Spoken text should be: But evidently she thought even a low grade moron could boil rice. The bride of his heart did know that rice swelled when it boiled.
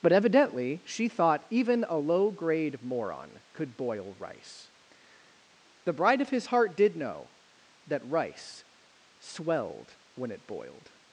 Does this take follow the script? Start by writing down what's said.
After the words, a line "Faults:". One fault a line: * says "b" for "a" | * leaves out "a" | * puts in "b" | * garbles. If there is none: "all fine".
But evidently she thought even a low grade moron could boil rice. The bride of his heart did know that rice swelled when it boiled.
Faults:
all fine